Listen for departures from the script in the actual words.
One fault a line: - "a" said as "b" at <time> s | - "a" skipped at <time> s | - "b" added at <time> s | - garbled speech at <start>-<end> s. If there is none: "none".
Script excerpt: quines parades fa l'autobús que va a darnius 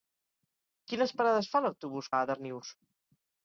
- "que" skipped at 2.1 s